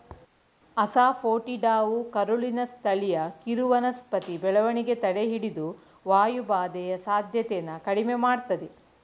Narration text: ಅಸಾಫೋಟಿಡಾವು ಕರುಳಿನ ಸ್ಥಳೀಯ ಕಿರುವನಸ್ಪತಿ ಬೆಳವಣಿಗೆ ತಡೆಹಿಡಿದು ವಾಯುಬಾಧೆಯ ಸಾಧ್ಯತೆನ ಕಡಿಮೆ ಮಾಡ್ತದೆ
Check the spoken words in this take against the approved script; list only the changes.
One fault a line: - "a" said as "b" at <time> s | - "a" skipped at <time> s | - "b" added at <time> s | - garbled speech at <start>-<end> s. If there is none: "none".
none